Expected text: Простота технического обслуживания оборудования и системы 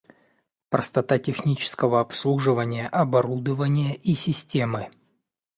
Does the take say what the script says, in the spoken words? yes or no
yes